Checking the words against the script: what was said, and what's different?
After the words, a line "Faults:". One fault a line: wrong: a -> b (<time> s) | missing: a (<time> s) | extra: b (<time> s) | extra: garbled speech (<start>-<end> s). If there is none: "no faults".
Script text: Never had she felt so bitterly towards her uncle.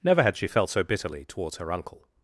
Never had she felt so bitterly towards her uncle.
Faults:
no faults